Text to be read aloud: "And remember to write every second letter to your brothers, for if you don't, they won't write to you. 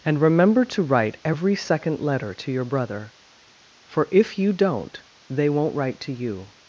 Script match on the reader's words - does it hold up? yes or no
no